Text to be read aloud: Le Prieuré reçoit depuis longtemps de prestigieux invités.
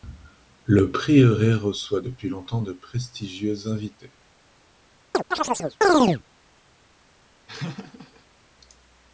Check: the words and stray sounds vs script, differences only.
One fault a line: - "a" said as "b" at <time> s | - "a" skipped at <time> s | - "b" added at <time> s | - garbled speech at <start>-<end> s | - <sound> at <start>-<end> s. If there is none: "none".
- chirp at 5.1-6.2 s
- laugh at 7.5-8.3 s